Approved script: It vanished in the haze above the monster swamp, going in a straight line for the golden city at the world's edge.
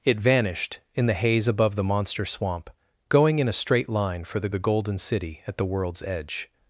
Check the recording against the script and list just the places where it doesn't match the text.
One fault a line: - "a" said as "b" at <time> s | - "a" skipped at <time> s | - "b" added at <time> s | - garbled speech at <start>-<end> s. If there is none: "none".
- "the" added at 4.5 s